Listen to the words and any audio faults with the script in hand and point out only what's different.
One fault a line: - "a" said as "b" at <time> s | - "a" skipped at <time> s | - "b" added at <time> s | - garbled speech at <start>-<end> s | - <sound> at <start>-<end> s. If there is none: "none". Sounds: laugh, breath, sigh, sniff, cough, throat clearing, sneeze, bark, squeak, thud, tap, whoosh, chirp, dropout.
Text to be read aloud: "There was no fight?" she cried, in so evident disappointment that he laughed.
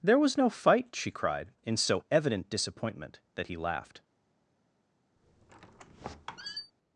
- squeak at 5.2-6.7 s